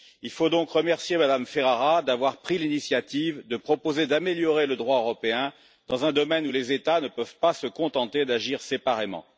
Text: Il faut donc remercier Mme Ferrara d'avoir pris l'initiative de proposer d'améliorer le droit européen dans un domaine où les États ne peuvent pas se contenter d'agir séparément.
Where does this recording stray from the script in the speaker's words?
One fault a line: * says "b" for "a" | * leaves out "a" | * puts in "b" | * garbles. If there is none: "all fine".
all fine